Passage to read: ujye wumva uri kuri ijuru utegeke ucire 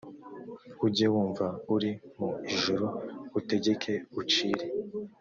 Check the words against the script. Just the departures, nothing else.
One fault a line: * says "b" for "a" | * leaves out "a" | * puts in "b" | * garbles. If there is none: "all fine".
* says "mu" for "kuri"